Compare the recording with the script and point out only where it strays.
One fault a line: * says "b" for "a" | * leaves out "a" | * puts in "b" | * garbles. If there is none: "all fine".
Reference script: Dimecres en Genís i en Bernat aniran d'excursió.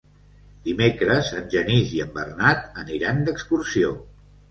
all fine